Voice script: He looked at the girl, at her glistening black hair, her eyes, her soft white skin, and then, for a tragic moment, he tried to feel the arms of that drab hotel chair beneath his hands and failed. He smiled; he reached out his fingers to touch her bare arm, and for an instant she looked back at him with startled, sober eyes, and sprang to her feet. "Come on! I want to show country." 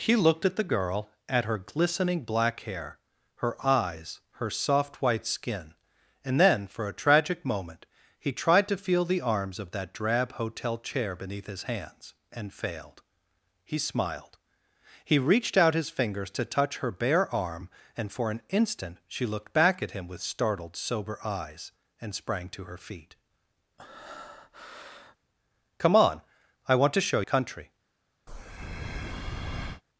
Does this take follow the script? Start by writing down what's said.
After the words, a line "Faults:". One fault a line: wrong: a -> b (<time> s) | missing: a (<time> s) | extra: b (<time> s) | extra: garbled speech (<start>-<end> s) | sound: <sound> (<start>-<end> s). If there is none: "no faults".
He looked at the girl, at her glistening black hair, her eyes, her soft white skin, and then, for a tragic moment, he tried to feel the arms of that drab hotel chair beneath his hands and failed. He smiled; he reached out his fingers to touch her bare arm, and for an instant she looked back at him with startled, sober eyes, and sprang to her feet. "Come on! I want to show country."
Faults:
sound: breath (23.8-25.2 s)
sound: breath (28.3-29.8 s)